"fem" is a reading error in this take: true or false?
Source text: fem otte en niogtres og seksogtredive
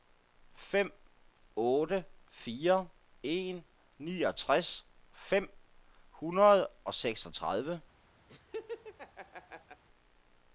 false